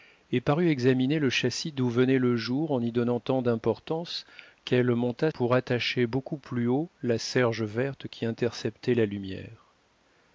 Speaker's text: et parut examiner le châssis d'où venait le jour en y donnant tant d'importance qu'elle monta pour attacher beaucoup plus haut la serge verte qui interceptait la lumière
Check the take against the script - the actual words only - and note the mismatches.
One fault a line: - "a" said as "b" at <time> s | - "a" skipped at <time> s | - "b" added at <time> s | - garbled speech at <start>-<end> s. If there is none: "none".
none